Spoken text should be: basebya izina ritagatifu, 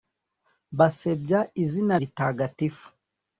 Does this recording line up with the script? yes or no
yes